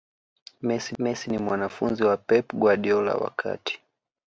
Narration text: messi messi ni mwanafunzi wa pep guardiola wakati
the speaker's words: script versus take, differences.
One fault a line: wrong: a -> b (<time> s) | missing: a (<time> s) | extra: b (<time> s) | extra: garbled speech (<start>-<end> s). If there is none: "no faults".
no faults